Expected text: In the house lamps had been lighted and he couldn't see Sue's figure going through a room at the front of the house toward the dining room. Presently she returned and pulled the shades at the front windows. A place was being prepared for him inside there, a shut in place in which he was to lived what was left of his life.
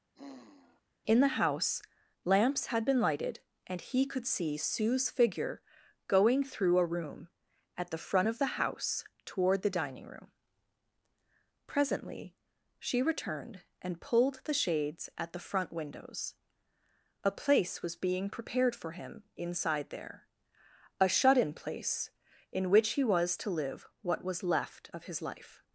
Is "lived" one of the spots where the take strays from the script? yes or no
yes